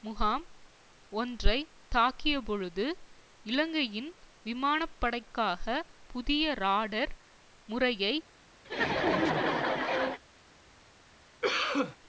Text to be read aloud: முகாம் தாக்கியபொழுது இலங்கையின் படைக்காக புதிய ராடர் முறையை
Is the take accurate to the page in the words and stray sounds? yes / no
no